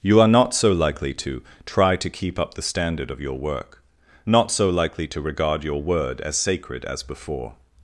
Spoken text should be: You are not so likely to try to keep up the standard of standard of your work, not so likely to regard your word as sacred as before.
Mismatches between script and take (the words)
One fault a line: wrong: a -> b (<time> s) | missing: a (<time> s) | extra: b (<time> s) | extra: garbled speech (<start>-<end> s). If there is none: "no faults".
missing: standard of (3.2 s)